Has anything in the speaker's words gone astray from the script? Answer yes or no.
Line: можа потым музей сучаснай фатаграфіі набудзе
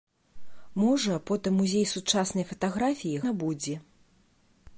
no